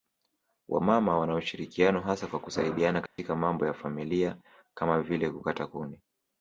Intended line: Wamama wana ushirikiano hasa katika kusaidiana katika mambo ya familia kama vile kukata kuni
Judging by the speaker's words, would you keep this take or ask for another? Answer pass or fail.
fail